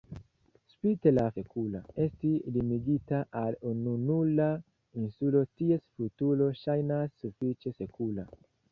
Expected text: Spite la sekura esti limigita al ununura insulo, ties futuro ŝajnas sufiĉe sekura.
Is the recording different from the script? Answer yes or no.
no